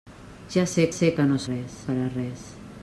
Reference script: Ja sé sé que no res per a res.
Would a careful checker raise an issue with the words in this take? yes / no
no